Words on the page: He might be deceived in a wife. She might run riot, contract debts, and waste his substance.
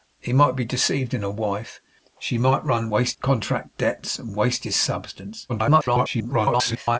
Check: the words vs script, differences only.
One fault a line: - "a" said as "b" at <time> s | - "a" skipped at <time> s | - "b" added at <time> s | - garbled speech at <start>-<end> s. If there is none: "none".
- "riot" said as "waste" at 2.9 s
- garbled speech at 5.5-7.0 s